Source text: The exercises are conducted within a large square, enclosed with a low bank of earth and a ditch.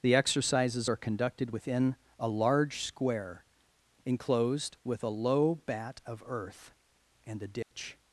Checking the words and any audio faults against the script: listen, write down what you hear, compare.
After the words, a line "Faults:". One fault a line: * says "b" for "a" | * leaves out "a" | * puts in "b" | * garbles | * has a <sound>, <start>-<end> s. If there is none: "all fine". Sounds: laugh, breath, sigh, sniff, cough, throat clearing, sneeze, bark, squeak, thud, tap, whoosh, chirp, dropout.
The exercises are conducted within a large square, enclosed with a low bat of earth and a ditch.
Faults:
* says "bat" for "bank"
* has a dropout, 7.6-7.7 s